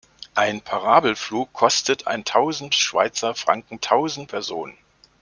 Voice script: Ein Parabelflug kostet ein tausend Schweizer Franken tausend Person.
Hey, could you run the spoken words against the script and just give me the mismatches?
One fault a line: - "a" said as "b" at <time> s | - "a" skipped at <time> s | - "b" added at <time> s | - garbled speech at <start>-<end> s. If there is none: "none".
none